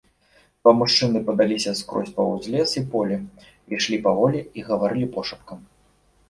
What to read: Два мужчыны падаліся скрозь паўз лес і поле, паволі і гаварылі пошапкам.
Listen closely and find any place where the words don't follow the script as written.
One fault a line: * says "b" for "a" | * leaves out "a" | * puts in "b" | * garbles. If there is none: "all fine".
* puts in "ішлі"